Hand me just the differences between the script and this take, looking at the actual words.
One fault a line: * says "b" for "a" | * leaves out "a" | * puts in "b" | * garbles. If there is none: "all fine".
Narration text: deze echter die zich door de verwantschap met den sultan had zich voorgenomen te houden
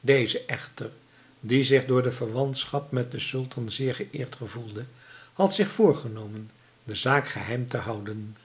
* puts in "zeer geëerd gevoelde"
* puts in "de zaak geheim"